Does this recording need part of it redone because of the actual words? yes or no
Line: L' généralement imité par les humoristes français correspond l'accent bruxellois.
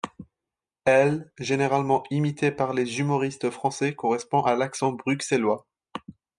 yes